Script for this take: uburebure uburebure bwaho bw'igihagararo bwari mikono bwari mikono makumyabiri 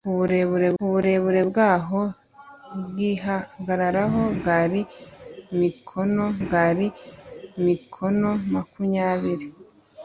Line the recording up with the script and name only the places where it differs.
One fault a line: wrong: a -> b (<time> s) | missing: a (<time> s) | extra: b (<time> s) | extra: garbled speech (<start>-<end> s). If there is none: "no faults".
no faults